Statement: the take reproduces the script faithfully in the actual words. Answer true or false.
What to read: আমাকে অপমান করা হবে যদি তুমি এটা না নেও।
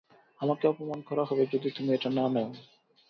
true